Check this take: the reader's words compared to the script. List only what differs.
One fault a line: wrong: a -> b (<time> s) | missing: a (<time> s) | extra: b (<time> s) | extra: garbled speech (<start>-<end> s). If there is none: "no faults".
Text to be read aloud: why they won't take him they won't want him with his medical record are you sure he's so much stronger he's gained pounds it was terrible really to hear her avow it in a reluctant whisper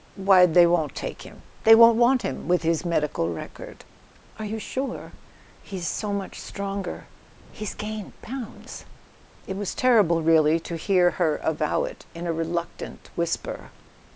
no faults